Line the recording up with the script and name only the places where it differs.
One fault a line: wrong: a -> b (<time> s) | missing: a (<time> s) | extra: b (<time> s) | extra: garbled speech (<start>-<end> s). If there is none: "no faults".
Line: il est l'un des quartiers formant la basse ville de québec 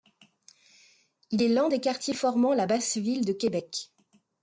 no faults